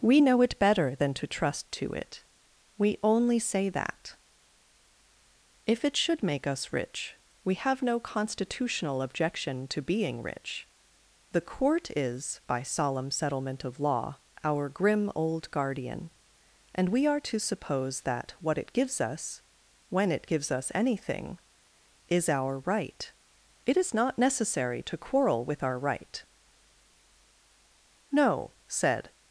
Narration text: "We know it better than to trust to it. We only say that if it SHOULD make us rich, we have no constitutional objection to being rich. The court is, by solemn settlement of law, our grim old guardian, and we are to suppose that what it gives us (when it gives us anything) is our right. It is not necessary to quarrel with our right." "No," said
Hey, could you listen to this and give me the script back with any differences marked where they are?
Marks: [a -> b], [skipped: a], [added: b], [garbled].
"We know it better than to trust to it. We only say that if it SHOULD make us rich, we have no constitutional objection to being rich. The court is, by solemn settlement of law, our grim old guardian, and we are to suppose that what it gives us (when it gives us anything) is our right. It is not necessary to quarrel with our right." "No," said